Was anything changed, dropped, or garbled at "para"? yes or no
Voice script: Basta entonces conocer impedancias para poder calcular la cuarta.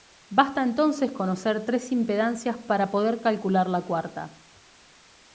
no